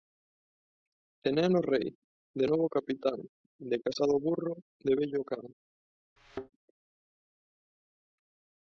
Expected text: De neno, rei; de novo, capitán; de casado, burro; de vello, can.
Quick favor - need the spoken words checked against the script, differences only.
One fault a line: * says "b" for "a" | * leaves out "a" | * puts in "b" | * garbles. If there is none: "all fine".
all fine